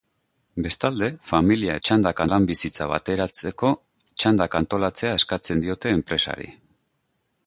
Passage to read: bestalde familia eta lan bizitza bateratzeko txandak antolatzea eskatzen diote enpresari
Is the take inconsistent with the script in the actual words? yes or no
yes